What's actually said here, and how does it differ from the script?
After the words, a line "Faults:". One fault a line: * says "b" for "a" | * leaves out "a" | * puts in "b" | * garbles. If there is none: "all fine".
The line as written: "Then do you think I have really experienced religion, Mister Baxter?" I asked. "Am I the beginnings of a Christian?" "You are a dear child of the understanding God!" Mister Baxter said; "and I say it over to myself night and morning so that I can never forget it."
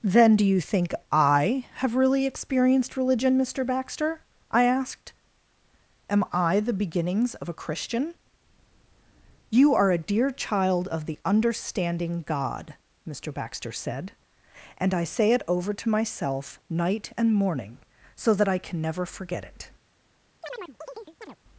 "Then do you think I have really experienced religion, Mister Baxter?" I asked. "Am I the beginnings of a Christian?" "You are a dear child of the understanding God!" Mister Baxter said; "and I say it over to myself night and morning so that I can never forget it."
Faults:
all fine